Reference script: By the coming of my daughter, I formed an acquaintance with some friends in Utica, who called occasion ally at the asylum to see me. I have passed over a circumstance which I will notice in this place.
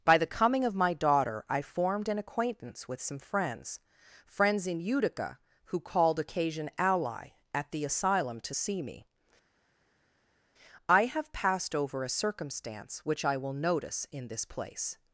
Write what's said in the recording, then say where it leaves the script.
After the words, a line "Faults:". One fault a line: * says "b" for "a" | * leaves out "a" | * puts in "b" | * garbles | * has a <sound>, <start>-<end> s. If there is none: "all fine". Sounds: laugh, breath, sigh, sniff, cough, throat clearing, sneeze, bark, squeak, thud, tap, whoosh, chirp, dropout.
By the coming of my daughter, I formed an acquaintance with some friends friends in Utica, who called occasion ally at the asylum to see me. I have passed over a circumstance which I will notice in this place.
Faults:
* puts in "friends"